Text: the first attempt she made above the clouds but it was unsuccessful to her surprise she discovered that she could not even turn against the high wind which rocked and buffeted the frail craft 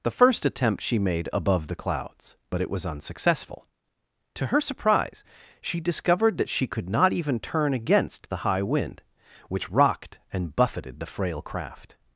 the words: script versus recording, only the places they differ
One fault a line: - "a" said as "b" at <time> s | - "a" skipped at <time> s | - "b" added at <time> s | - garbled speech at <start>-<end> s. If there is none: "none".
none